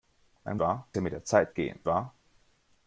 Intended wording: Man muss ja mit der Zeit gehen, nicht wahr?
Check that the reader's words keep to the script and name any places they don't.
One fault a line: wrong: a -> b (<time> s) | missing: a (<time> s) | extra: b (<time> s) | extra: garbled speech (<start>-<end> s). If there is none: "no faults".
wrong: muss -> wahr (0.6 s)
missing: nicht (1.8 s)